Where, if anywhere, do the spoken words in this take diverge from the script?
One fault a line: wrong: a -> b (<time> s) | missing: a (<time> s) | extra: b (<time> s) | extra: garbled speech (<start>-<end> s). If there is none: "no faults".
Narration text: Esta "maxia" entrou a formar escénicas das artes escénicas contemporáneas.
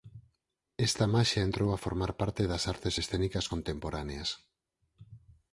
wrong: escénicas -> parte (2.2 s)